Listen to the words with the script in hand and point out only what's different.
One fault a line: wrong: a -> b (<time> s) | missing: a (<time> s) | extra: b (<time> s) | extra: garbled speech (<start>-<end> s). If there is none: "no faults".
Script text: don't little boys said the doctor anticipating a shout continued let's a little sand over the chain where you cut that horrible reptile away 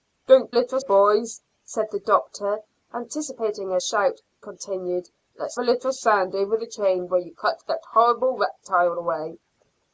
no faults